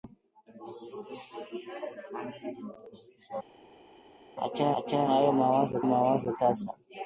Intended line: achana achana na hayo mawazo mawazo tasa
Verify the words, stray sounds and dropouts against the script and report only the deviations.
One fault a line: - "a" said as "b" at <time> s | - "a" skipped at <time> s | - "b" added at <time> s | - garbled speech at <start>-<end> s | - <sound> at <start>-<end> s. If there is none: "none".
none